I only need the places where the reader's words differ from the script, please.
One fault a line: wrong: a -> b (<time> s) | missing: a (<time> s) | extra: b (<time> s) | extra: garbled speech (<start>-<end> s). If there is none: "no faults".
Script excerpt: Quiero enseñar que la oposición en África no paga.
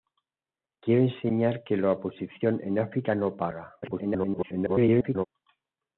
extra: garbled speech (3.8-5.3 s)